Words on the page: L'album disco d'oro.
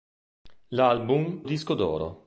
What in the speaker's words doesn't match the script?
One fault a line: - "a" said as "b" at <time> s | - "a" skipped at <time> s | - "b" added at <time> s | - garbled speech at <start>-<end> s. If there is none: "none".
none